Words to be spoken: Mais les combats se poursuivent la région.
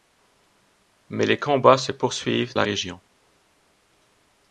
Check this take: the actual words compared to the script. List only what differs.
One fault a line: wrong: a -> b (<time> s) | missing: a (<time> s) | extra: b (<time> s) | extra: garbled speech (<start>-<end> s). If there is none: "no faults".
no faults